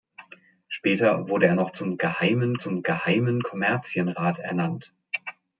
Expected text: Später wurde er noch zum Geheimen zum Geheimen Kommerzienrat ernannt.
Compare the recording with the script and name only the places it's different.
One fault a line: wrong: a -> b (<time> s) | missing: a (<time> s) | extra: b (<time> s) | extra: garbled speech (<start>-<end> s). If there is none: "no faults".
no faults